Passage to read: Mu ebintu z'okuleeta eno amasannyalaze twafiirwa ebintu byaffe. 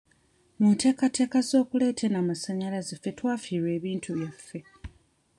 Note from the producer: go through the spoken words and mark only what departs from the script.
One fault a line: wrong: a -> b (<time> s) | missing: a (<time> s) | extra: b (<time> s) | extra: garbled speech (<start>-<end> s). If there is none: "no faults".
wrong: ebintu -> nteekateeka (0.7 s)
extra: ffe (3.0 s)